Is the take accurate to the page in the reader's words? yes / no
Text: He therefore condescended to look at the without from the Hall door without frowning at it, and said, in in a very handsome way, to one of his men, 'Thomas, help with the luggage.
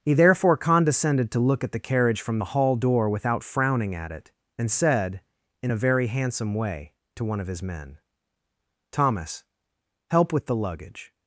no